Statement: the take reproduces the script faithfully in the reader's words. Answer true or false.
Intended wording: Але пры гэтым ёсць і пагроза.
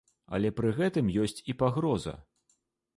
true